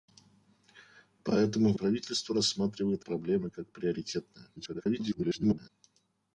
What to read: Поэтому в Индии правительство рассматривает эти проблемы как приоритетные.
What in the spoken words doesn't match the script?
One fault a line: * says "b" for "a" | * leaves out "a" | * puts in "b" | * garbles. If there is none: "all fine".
* leaves out "Индии"
* leaves out "эти"
* garbles